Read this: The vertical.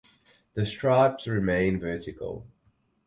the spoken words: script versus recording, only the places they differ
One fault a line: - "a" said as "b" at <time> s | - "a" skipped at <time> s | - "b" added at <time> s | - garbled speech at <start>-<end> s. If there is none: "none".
- "stripes remain" added at 0.7 s